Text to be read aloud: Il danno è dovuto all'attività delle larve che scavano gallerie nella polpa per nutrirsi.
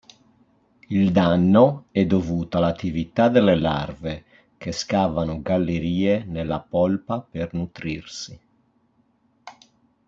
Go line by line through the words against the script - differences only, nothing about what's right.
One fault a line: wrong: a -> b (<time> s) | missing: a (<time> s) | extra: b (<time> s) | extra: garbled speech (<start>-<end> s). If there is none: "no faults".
no faults